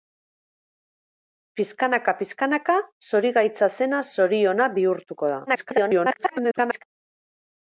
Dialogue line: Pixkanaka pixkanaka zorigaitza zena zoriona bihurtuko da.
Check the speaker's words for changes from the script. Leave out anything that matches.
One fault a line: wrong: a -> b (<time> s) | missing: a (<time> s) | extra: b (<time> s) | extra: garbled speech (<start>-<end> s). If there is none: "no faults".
extra: garbled speech (5.5-6.8 s)